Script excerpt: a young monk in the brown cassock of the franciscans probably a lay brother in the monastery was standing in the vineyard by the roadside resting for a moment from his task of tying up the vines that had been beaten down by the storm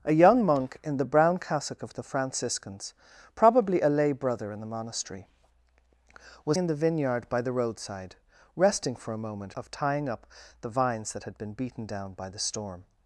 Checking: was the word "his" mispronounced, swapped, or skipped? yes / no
yes